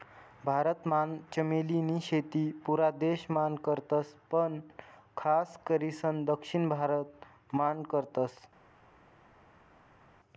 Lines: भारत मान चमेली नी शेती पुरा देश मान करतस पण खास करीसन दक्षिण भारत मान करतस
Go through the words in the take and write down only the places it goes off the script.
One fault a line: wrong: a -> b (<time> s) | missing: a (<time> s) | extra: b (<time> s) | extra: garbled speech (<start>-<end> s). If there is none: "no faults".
no faults